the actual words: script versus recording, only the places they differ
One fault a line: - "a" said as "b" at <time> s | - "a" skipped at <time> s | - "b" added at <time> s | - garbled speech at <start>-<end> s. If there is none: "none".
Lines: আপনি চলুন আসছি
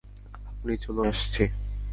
none